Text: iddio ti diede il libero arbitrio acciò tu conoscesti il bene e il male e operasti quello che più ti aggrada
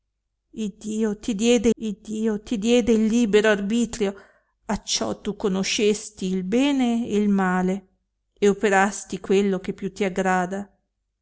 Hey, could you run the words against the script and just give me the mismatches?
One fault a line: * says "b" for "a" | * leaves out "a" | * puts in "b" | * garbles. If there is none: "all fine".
* puts in "iddio ti diede"